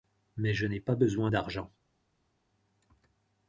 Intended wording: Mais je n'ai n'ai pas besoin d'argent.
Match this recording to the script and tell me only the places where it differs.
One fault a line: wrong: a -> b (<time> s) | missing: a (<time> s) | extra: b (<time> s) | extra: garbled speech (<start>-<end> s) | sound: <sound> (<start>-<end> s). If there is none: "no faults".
missing: n'ai (0.8 s)